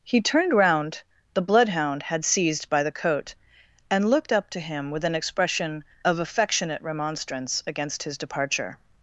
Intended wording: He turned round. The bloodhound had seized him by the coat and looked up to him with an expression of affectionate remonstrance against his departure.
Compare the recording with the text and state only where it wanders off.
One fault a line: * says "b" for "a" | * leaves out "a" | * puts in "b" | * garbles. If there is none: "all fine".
* leaves out "him"